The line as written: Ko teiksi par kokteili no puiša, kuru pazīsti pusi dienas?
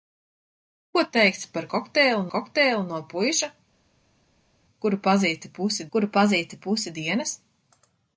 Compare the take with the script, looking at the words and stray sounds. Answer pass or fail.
fail